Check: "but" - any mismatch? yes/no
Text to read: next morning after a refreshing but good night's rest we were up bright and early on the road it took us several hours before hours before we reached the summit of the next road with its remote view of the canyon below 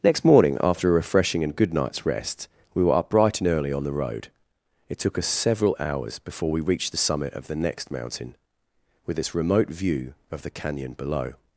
yes